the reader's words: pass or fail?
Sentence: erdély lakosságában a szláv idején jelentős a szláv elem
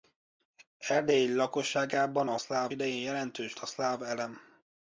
pass